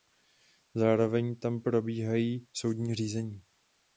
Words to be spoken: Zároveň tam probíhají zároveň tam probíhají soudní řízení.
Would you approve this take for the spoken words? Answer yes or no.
no